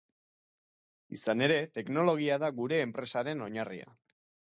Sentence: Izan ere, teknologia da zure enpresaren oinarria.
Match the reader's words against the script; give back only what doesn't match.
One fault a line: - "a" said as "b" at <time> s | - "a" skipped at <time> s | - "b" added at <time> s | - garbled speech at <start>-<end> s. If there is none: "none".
- "zure" said as "gure" at 2.6 s